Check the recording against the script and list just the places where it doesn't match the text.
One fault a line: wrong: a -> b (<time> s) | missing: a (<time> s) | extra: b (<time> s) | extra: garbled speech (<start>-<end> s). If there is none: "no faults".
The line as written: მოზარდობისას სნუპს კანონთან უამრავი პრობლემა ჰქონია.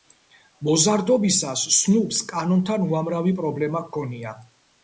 no faults